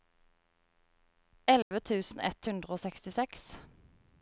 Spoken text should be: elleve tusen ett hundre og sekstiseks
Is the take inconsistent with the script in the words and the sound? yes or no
yes